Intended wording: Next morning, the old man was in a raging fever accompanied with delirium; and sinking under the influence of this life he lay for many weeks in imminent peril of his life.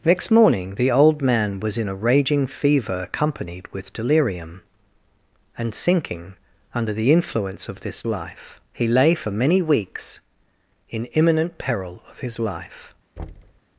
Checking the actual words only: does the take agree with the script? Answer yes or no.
yes